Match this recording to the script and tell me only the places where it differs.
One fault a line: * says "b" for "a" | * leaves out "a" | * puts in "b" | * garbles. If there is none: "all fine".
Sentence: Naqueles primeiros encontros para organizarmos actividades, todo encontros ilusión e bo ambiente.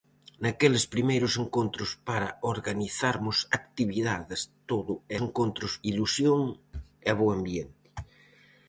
all fine